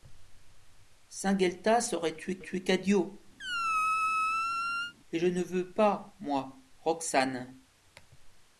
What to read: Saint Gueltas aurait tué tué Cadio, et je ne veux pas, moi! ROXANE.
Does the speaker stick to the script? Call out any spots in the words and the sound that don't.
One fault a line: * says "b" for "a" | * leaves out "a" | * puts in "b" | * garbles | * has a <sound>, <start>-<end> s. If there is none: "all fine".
* has a squeak, 3.4-4.9 s